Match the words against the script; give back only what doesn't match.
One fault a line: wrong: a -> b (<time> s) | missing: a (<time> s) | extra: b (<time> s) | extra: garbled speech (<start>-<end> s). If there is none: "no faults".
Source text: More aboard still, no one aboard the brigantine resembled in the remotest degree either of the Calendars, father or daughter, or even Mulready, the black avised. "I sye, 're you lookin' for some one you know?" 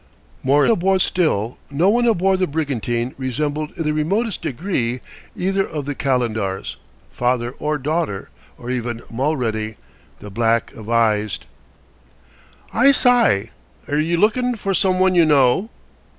no faults